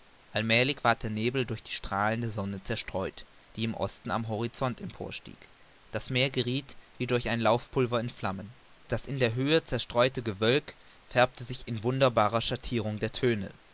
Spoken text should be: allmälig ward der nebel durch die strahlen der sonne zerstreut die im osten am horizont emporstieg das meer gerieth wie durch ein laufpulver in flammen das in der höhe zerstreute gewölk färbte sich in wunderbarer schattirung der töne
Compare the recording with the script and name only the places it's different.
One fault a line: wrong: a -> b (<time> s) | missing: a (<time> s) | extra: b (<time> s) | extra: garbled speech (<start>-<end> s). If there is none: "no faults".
no faults